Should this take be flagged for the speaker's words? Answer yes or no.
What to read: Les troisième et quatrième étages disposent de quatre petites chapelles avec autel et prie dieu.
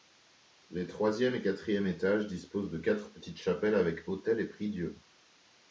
no